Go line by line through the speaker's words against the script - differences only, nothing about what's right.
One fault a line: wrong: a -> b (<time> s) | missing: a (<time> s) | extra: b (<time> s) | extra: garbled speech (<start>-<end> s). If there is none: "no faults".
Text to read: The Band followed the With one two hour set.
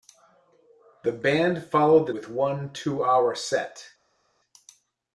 no faults